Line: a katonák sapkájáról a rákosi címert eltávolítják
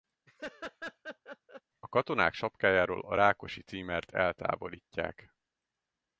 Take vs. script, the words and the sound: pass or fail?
fail